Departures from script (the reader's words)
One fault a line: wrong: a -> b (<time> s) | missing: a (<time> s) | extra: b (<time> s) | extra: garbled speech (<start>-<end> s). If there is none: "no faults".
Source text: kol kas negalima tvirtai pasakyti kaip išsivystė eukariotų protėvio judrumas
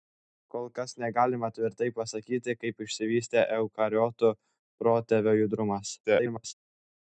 extra: garbled speech (6.0-6.5 s)